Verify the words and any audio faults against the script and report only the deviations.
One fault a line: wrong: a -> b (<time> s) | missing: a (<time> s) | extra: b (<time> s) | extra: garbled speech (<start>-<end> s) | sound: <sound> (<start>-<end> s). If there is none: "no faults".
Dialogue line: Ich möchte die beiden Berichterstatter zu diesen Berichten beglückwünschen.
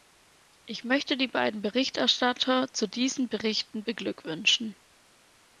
no faults